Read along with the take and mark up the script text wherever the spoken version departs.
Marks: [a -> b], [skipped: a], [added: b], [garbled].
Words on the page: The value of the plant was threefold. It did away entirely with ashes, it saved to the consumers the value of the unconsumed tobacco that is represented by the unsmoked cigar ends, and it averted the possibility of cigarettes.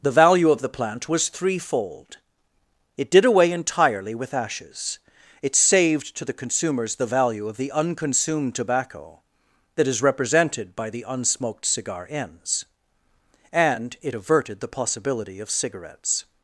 The value of the plant was threefold. It did away entirely with ashes, it saved to the consumers the value of the unconsumed tobacco that is represented by the unsmoked cigar ends, and it averted the possibility of cigarettes.